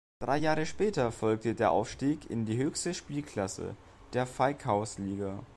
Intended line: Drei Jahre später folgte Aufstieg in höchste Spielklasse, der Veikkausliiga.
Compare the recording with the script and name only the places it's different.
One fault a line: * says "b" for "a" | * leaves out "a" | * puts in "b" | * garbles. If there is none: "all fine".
* puts in "der"
* puts in "die"